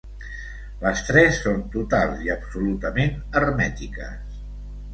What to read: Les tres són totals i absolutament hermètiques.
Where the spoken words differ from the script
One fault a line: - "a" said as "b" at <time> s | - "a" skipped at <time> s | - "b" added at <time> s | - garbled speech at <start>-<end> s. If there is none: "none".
none